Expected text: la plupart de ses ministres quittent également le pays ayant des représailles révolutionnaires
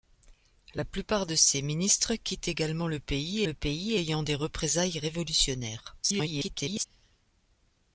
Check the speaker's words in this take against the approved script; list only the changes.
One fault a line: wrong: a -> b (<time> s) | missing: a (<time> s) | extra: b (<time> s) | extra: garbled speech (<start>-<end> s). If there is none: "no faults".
extra: le pays (3.4 s)
extra: garbled speech (6.0-6.9 s)